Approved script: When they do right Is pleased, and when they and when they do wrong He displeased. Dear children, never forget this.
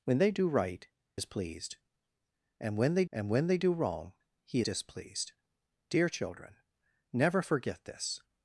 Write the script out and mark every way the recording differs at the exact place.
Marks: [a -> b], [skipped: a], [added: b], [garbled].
When they do right Is pleased, and when they and when they do wrong He displeased. Dear children, never forget this.